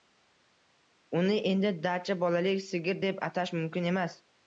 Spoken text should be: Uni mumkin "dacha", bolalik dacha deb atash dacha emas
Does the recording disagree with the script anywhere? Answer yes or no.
yes